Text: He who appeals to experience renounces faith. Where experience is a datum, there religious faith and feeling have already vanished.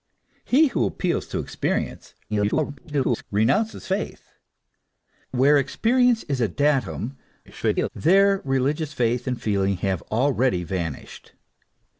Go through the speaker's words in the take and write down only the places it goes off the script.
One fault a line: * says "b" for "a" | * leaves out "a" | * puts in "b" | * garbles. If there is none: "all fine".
* garbles
* garbles